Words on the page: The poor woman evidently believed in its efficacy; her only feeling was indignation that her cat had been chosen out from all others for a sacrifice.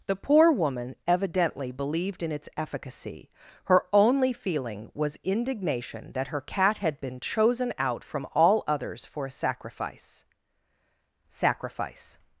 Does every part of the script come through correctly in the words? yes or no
no